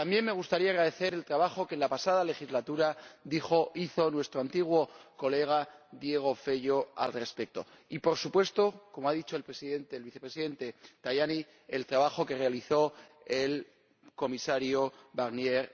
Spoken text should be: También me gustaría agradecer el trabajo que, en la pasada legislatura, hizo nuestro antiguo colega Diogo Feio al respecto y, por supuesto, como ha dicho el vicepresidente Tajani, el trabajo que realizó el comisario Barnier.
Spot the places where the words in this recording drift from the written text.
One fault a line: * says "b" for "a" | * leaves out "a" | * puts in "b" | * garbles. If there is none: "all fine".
all fine